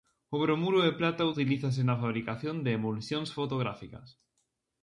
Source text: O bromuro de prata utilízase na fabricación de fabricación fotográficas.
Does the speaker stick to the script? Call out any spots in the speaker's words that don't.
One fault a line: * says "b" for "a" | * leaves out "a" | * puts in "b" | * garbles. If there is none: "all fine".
* says "emulsións" for "fabricación"